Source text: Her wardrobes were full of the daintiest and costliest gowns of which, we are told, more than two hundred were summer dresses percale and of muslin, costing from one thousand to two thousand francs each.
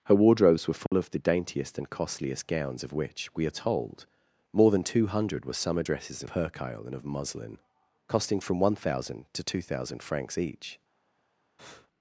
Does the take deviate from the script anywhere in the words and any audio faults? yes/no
yes